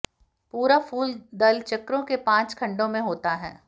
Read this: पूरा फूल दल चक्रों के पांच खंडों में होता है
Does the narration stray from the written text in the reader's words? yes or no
no